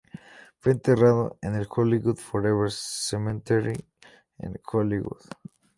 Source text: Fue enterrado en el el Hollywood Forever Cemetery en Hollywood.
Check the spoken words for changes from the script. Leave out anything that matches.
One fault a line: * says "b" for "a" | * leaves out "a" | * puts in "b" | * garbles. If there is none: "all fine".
* leaves out "el"